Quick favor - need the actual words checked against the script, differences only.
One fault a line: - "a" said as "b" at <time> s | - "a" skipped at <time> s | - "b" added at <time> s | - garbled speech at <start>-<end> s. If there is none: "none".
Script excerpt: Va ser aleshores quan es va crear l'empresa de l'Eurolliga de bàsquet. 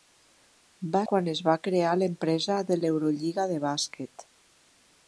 - "ser aleshores" skipped at 1.0 s